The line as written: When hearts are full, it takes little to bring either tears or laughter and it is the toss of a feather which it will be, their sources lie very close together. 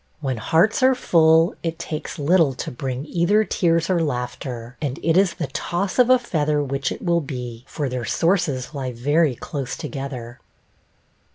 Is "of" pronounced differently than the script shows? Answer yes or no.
no